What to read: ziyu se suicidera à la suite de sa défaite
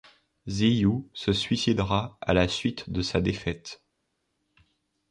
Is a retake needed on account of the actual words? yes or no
no